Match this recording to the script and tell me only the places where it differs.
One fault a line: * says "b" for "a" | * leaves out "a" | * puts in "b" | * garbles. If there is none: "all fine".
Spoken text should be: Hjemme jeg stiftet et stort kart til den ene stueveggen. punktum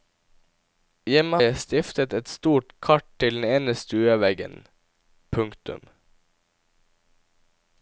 all fine